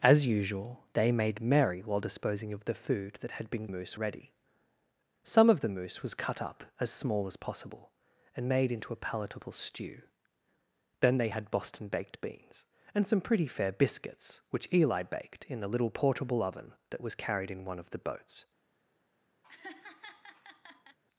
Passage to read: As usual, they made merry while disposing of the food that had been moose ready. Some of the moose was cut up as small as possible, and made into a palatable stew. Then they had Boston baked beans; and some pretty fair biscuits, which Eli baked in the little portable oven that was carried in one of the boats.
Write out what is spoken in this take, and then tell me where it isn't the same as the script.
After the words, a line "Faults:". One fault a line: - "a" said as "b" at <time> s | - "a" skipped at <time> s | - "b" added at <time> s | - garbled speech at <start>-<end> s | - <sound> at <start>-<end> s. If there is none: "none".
As usual, they made merry while disposing of the food that had been moose ready. Some of the moose was cut up as small as possible, and made into a palatable stew. Then they had Boston baked beans; and some pretty fair biscuits, which Eli baked in the little portable oven that was carried in one of the boats.
Faults:
- laugh at 19.4-21.0 s